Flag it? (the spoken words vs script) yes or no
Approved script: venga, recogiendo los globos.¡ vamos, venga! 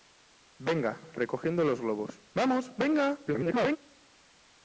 yes